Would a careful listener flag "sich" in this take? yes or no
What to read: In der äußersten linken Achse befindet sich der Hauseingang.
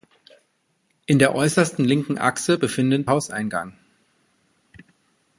yes